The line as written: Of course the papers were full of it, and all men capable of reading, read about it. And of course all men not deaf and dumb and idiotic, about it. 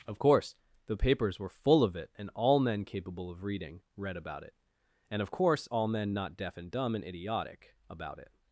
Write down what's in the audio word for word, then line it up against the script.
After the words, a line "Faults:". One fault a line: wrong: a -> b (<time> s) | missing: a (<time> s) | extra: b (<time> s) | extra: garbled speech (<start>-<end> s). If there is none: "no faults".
Of course the papers were full of it, and all men capable of reading, read about it. And of course all men not deaf and dumb and idiotic, about it.
Faults:
no faults